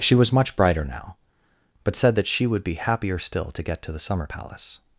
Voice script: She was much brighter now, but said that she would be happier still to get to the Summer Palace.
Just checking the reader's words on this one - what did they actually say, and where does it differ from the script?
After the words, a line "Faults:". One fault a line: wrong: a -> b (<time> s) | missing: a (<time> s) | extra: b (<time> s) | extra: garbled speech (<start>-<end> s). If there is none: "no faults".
She was much brighter now, but said that she would be happier still to get to the Summer Palace.
Faults:
no faults